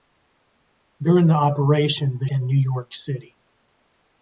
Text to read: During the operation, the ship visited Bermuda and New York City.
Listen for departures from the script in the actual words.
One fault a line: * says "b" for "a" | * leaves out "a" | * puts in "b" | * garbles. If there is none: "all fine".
* leaves out "ship visited Bermuda"